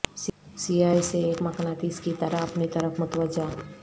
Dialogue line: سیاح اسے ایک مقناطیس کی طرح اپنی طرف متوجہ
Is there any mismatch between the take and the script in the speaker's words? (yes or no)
no